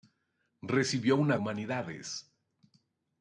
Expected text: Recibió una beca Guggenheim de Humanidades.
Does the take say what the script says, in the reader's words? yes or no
no